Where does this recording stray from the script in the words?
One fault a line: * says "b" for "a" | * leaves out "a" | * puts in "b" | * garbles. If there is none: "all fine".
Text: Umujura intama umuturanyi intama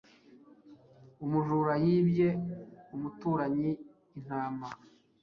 * says "yibye" for "intama"